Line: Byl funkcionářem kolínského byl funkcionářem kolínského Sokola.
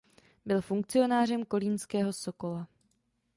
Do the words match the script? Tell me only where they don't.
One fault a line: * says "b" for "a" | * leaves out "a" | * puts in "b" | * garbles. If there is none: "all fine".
* leaves out "byl funkcionářem kolínského"